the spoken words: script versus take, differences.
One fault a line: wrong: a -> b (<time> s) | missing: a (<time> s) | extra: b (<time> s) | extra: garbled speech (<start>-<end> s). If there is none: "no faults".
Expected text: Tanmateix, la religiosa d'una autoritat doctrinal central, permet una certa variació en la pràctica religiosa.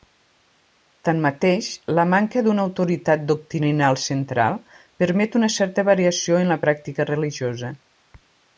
wrong: religiosa -> manca (2.1 s)